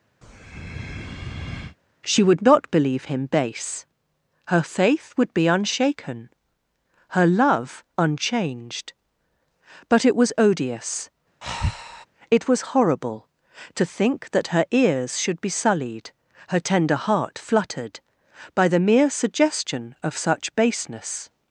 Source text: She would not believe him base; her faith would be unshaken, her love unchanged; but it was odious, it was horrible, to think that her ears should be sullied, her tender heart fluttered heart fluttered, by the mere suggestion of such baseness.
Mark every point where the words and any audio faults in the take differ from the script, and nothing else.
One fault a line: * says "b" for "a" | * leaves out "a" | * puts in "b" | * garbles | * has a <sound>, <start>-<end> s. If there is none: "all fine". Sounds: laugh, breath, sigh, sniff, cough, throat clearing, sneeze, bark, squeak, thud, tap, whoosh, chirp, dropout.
* has a breath, 0.2-1.8 s
* has a breath, 11.4-12.1 s
* leaves out "heart fluttered"